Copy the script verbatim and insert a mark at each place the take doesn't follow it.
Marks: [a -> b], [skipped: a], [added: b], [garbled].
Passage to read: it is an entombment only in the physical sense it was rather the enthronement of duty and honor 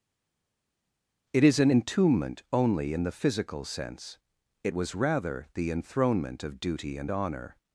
it is an entombment only in the physical sense it was rather the enthronement of duty and honor